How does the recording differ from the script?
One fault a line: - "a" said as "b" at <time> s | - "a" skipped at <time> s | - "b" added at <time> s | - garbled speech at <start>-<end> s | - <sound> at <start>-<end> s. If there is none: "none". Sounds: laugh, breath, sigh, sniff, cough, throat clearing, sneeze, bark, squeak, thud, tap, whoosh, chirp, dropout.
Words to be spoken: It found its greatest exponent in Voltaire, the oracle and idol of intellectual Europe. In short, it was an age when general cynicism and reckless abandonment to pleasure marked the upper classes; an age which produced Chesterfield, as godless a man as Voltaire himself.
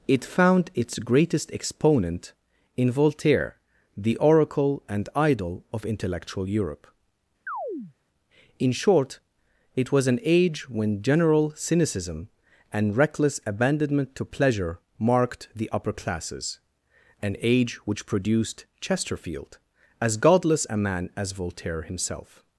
- chirp at 7.5-7.9 s